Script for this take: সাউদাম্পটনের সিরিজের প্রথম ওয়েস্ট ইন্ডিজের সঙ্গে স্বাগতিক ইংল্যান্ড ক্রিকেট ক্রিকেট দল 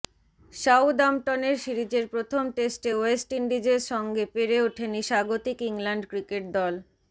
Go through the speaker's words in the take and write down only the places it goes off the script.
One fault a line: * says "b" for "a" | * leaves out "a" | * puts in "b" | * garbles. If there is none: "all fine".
* puts in "টেস্টে"
* puts in "পেরে ওঠেনি"
* leaves out "ক্রিকেট"